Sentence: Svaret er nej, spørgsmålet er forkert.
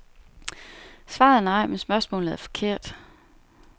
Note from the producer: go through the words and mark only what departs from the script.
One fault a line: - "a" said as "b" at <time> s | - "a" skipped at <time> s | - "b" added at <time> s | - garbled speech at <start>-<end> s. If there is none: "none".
- "men" added at 1.7 s